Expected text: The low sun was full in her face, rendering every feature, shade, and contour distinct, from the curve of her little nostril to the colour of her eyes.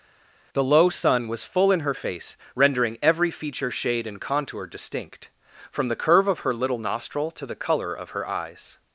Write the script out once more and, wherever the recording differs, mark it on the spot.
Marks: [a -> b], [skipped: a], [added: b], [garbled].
The low sun was full in her face, rendering every feature, shade, and contour distinct, from the curve of her little nostril to the colour of her eyes.